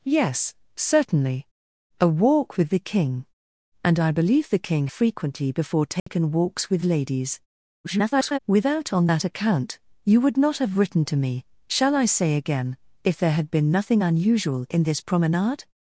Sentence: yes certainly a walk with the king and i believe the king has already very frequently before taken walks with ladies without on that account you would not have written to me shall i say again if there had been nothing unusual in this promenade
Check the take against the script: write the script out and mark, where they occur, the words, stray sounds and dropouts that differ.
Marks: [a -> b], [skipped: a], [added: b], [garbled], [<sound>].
yes certainly a walk with the king and i believe the king [skipped: has already very] frequently before taken [dropout] walks with ladies [garbled] without on that account you would not have written to me shall i say again if there had been nothing unusual in this promenade